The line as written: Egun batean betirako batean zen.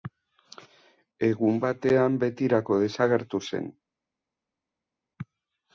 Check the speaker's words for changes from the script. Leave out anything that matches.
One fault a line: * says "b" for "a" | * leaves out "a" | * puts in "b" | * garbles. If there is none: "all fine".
* says "desagertu" for "batean"